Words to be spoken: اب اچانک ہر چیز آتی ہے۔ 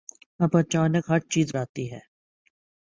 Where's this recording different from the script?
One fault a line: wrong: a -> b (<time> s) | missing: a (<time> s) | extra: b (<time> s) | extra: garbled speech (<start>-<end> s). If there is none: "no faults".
no faults